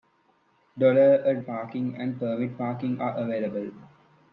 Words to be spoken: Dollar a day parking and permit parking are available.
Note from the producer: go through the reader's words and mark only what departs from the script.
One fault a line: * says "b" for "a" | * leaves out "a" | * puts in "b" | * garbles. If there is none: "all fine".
* leaves out "day"